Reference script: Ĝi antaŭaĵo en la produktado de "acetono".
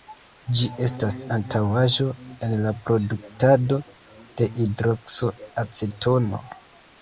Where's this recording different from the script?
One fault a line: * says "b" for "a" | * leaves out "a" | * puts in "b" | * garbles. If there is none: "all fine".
* puts in "estas"
* puts in "hidrokso"